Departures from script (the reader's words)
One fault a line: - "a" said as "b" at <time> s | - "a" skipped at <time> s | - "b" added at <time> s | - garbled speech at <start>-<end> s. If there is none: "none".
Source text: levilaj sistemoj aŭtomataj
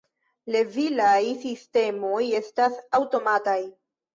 - "estas" added at 2.4 s